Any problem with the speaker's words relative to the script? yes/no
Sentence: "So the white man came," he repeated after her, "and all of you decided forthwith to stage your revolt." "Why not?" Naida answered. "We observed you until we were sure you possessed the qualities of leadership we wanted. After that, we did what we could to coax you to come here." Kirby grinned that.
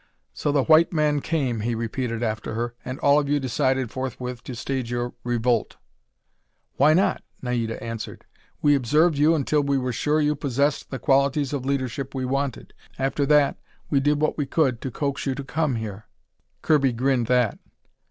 no